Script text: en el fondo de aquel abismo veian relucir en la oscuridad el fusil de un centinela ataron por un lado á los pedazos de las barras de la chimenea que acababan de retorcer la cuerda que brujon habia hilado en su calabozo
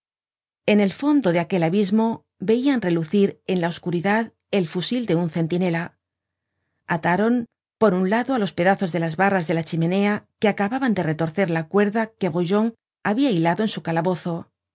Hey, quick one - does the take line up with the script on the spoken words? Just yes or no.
yes